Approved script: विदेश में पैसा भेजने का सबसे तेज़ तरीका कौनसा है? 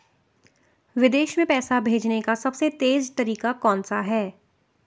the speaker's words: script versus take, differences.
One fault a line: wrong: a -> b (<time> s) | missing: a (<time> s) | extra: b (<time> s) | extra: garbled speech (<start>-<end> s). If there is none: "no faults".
no faults